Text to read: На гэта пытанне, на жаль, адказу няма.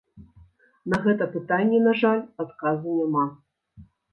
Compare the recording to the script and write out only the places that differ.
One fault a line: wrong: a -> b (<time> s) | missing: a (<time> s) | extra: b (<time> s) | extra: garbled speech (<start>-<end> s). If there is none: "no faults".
no faults